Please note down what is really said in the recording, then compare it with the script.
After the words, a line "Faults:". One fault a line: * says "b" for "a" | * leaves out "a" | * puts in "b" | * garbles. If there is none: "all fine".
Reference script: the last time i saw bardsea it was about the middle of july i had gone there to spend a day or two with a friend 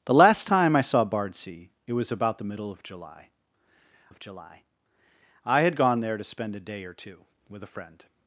the last time i saw bardsea it was about the middle of july of july i had gone there to spend a day or two with a friend
Faults:
* puts in "of july"